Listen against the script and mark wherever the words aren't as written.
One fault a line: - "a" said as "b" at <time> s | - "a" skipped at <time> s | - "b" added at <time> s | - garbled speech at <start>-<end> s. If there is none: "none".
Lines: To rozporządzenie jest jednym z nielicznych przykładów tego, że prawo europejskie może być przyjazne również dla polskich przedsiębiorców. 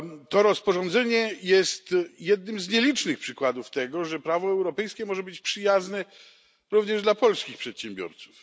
none